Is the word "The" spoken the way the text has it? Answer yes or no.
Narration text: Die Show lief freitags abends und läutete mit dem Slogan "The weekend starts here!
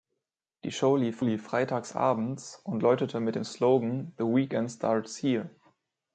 yes